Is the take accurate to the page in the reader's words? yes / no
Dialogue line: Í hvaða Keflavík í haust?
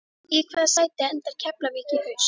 no